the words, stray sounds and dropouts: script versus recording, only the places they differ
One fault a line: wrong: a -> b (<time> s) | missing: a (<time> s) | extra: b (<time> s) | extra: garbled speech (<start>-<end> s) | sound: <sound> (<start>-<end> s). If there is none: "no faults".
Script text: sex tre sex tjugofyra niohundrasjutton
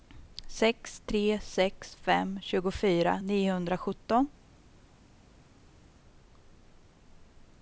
extra: fem (1.9 s)